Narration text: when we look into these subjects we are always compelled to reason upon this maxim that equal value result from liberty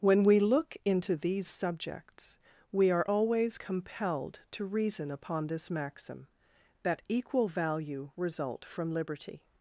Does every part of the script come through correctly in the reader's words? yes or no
yes